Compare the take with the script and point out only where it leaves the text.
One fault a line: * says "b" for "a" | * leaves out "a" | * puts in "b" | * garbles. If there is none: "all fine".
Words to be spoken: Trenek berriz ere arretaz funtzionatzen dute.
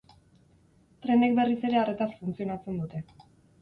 all fine